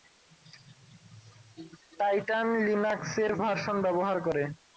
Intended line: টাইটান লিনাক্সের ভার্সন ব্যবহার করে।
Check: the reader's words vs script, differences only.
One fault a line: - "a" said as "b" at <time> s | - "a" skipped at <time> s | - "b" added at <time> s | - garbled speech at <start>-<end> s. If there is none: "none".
none